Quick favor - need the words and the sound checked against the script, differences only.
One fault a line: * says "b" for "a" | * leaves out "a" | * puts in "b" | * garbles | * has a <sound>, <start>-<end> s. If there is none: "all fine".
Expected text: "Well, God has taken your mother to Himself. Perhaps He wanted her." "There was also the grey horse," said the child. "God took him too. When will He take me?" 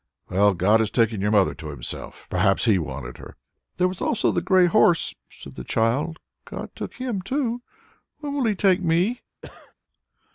* has a cough, 9.4-9.7 s